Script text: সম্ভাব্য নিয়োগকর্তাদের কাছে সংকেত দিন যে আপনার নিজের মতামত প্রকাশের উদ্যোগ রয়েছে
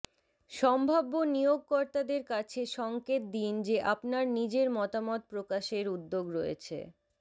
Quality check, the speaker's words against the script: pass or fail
pass